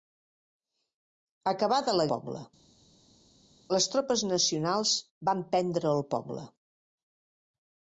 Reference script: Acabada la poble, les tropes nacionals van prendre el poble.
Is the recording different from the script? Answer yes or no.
no